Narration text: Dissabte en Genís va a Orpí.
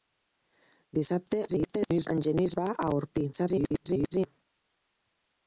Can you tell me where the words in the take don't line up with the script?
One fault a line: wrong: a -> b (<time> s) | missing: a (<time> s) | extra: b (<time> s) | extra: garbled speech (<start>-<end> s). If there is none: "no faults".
extra: garbled speech (1.5-2.1 s)
extra: garbled speech (3.3-4.3 s)